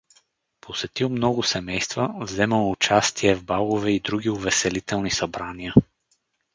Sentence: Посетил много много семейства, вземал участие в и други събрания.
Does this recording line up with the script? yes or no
no